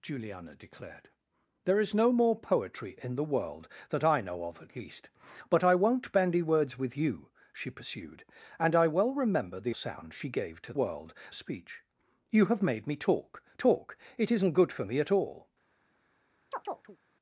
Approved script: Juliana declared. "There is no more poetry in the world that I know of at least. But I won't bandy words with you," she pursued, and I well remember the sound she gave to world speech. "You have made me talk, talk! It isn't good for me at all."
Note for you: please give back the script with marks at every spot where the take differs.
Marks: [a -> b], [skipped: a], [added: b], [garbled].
Juliana declared. "There is no more poetry in the world that I know of at least. But I won't bandy words with you," she pursued, and I well remember the sound she gave to world speech. "You have made me talk, talk! It isn't good for me at all."